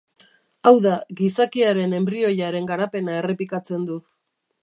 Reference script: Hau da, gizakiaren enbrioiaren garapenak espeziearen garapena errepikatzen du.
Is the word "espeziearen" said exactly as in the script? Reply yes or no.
no